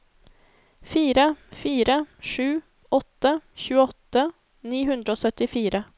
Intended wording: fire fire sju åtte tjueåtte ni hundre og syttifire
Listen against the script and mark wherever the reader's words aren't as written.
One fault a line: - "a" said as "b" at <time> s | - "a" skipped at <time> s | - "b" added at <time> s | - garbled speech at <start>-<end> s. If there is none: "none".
none